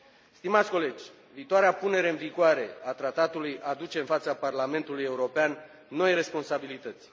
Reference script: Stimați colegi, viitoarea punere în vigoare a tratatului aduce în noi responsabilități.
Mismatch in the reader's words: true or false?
true